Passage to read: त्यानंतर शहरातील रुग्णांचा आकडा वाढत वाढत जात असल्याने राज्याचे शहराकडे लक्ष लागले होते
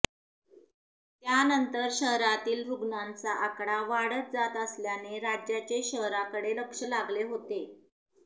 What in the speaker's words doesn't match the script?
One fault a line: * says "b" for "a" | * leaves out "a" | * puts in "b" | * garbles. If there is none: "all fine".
* leaves out "वाढत"